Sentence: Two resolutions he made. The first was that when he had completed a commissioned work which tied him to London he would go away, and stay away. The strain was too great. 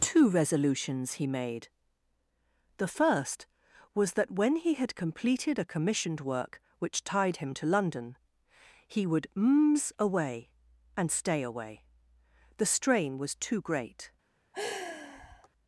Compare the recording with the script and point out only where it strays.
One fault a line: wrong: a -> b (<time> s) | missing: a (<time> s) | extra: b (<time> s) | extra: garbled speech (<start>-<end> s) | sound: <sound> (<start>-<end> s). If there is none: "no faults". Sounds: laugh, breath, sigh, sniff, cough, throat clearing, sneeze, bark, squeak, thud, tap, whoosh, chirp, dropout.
wrong: go -> mms (9.4 s)
sound: sigh (14.5-15.5 s)